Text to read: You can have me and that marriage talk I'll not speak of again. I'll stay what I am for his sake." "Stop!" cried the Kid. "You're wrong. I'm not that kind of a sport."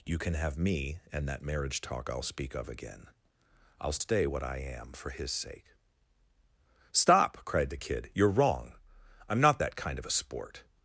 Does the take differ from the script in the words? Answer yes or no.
yes